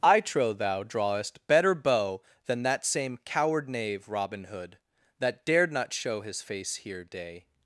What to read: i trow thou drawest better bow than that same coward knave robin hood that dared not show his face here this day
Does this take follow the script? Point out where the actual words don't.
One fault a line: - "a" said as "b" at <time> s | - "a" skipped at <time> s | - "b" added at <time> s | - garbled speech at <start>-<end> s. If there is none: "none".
- "this" skipped at 7.0 s